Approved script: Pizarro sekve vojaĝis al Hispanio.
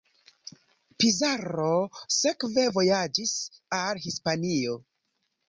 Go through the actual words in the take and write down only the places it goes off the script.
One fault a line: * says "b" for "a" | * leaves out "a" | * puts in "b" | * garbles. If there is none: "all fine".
all fine